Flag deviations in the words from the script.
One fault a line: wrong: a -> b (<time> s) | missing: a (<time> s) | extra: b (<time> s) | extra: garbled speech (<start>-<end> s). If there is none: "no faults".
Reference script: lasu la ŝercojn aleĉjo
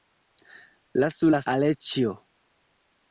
missing: ŝercojn (1.4 s)